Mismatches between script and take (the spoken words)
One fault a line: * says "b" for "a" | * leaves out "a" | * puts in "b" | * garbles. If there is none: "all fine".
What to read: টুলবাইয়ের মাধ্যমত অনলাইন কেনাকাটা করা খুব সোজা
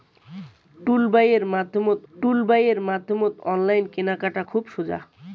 * puts in "টুলবাইয়ের মাধ্যমত"
* leaves out "করা"